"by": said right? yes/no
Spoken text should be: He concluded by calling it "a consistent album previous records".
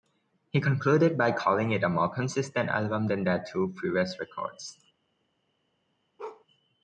yes